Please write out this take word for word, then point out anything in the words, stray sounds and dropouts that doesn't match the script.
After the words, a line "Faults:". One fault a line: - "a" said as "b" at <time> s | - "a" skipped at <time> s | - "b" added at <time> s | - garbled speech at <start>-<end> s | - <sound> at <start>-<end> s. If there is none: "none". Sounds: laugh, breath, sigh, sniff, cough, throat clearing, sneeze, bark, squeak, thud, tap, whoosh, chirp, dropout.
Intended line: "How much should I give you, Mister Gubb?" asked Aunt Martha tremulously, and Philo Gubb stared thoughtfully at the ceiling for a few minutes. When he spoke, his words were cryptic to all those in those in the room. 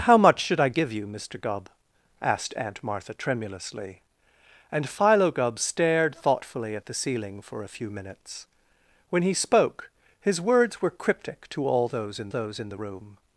"How much should I give you, Mister Gubb?" asked Aunt Martha tremulously, and Philo Gubb stared thoughtfully at the ceiling for a few minutes. When he spoke, his words were cryptic to all those in those in the room.
Faults:
none